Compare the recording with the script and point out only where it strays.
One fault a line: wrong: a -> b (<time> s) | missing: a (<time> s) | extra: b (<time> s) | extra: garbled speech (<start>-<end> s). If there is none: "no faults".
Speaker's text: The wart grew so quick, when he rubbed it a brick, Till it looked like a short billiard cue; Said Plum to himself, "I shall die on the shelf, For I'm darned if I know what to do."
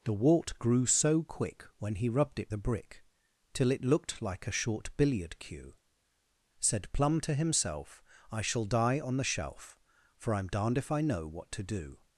no faults